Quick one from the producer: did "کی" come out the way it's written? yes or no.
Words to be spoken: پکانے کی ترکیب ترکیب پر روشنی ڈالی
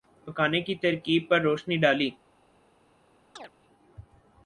yes